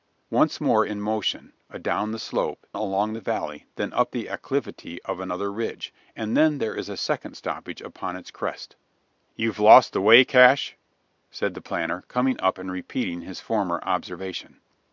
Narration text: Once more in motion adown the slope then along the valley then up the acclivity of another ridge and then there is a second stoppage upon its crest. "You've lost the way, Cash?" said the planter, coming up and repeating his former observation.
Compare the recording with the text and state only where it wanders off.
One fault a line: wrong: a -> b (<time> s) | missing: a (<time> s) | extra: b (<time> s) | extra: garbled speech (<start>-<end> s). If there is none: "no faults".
missing: then (2.6 s)